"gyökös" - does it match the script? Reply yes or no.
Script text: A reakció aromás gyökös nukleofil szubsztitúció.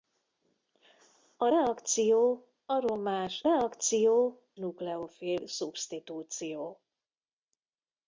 no